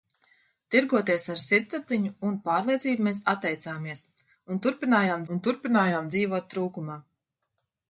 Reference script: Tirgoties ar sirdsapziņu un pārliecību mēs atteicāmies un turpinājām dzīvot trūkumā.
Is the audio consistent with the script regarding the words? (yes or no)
no